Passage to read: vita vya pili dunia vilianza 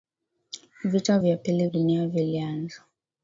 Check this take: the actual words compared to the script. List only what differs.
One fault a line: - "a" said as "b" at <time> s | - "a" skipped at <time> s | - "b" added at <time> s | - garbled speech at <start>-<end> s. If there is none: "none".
none